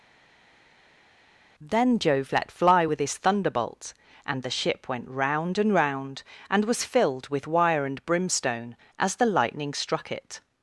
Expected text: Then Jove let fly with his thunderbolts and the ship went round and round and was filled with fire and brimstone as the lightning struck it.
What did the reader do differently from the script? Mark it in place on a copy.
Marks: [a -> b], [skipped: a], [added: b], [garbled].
Then Jove let fly with his [thunderbolts -> thunderbolt] and the ship went round and round and was filled with [fire -> wire] and brimstone as the lightning struck it.